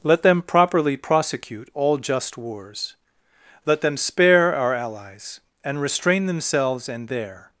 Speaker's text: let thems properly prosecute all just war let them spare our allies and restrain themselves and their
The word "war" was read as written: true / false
false